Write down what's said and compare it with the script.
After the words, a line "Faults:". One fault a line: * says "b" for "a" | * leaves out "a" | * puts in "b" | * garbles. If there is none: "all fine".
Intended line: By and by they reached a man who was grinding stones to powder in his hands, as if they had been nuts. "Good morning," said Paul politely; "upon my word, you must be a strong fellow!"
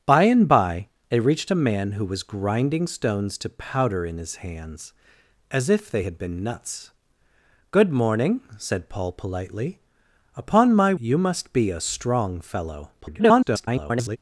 By and by they reached a man who was grinding stones to powder in his hands, as if they had been nuts. "Good morning," said Paul politely; "upon my you must be a strong fellow!" [garbled]
Faults:
* leaves out "word"
* garbles